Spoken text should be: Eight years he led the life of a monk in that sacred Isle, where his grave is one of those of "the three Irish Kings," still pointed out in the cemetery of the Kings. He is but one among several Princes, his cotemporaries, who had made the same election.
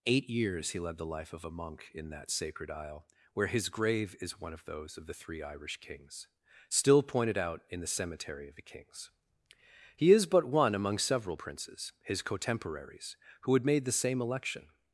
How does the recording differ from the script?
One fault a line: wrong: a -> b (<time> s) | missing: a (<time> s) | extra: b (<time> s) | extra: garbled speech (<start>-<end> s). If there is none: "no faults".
no faults